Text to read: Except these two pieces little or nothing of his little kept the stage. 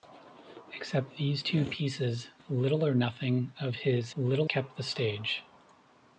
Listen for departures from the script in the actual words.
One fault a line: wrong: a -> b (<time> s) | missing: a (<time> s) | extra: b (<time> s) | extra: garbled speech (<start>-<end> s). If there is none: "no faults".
no faults